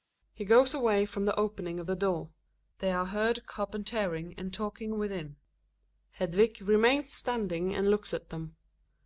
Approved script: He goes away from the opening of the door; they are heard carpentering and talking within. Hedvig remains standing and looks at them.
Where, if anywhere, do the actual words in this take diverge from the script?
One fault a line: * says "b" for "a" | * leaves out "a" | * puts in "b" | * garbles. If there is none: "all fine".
all fine